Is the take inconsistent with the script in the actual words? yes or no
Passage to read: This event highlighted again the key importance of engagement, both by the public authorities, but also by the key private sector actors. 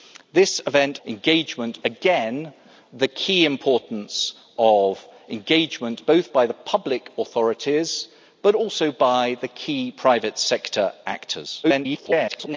yes